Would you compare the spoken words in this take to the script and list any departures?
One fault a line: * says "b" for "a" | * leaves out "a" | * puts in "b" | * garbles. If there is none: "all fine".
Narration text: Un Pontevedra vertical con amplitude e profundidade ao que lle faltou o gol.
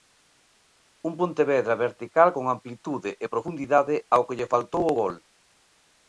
all fine